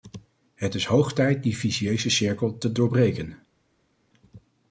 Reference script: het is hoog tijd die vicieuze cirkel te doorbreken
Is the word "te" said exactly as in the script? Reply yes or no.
yes